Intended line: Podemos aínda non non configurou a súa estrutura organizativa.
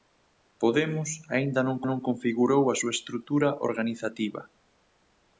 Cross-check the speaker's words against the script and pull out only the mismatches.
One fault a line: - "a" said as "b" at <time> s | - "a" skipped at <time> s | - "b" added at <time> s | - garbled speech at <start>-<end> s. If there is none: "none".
none